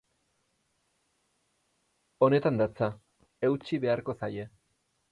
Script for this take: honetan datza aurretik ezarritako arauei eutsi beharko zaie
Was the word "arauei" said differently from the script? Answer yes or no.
yes